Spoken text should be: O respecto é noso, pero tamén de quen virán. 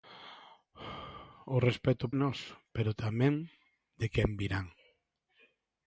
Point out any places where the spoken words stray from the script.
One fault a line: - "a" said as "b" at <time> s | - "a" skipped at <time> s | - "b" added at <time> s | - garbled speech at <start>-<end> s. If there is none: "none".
none